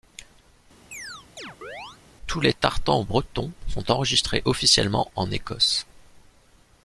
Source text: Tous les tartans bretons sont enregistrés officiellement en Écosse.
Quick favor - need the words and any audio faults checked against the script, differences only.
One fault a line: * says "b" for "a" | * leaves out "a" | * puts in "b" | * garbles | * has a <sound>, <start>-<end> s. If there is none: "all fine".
* has a chirp, 0.9-2.0 s